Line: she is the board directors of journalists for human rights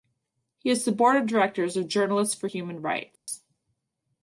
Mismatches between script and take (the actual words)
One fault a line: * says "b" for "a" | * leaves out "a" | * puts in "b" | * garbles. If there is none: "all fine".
* says "he" for "she"
* puts in "of"